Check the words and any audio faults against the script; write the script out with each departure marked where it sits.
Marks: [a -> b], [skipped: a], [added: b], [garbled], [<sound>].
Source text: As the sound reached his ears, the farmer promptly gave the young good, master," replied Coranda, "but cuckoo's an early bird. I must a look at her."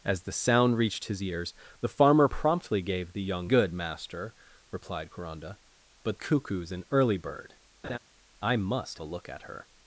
As the sound reached his ears, the farmer promptly gave the young good, master," replied Coranda, "but cuckoo's an early bird. [laugh] I must a look at her."